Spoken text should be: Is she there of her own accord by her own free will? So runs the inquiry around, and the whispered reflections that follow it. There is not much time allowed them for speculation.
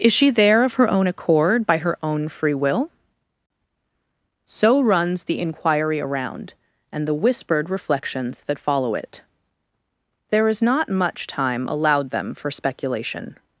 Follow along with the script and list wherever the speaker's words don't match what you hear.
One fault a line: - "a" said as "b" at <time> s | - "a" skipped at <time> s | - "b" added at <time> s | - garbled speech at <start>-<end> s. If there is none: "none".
none